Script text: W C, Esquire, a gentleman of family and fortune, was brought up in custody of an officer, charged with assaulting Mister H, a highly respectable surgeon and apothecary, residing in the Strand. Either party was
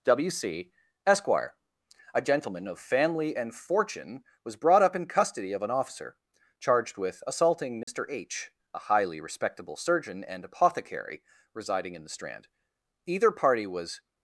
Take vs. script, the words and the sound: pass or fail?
fail